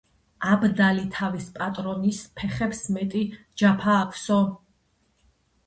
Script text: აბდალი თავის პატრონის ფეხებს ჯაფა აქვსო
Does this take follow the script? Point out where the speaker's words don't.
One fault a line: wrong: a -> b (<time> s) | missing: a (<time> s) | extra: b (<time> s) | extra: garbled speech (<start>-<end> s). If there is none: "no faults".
extra: მეტი (3.0 s)